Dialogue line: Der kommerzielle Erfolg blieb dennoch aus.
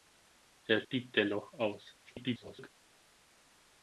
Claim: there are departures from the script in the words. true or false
true